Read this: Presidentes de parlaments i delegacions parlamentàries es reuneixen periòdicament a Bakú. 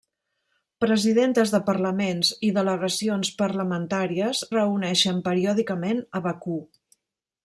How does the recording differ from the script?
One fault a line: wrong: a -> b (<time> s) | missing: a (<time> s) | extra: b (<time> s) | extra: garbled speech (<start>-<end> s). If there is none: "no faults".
missing: es (4.4 s)